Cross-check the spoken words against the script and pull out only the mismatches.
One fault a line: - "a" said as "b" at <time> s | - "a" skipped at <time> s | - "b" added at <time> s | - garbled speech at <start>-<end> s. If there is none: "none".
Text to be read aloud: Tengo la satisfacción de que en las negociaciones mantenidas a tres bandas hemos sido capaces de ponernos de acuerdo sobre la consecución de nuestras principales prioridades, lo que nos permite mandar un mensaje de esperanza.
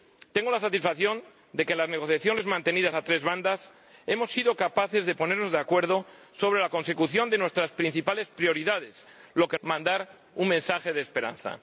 - "nos permite" skipped at 9.6 s